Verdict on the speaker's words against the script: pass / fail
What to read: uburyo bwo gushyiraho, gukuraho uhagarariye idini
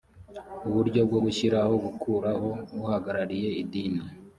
pass